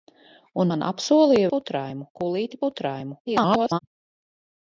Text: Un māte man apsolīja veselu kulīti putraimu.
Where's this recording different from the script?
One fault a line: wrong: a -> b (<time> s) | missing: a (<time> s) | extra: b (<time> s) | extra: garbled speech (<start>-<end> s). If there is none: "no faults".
missing: māte (0.7 s)
wrong: veselu -> putraimu (1.5 s)
extra: garbled speech (3.2-3.8 s)